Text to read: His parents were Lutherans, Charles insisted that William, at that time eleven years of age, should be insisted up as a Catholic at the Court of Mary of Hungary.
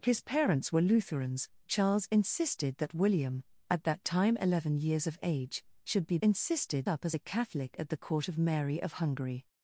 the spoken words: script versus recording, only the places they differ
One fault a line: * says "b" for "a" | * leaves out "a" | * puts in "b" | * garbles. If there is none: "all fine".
all fine